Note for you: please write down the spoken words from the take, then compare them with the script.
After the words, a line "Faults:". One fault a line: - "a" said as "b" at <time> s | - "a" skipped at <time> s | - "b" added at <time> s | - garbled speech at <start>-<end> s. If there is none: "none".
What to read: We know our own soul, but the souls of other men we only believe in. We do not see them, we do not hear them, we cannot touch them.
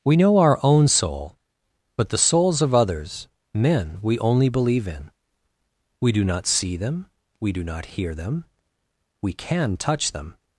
We know our own soul, but the souls of others men we only believe in. We do not see them, we do not hear them, we can touch them.
Faults:
- "other" said as "others" at 2.7 s
- "cannot" said as "can" at 9.3 s